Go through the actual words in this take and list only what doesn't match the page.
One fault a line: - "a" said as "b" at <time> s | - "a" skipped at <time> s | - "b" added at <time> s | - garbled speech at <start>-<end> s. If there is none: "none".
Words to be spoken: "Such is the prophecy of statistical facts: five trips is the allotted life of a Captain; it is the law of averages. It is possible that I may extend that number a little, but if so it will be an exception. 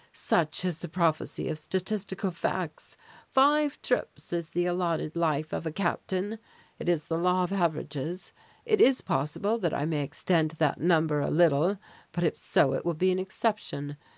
none